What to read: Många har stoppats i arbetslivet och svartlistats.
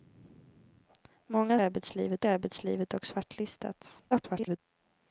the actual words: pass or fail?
fail